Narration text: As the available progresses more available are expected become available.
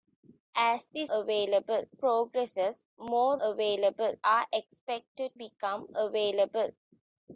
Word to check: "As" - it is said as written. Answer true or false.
true